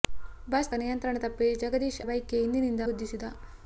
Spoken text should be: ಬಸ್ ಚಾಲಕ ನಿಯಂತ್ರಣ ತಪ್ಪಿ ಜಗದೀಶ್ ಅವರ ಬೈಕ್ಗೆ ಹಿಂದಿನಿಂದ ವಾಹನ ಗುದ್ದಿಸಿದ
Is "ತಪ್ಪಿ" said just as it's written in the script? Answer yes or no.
yes